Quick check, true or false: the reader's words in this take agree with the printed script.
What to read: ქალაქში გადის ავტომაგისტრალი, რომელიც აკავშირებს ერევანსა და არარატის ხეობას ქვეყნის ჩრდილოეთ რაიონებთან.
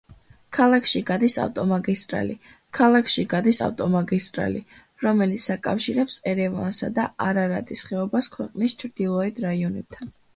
false